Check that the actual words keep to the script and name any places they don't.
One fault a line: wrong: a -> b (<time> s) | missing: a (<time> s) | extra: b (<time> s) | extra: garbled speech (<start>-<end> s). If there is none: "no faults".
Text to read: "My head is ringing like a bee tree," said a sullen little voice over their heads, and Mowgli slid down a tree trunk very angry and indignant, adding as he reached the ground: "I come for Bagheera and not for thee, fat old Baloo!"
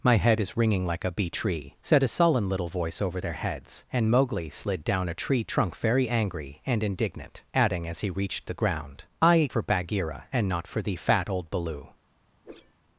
missing: come (9.5 s)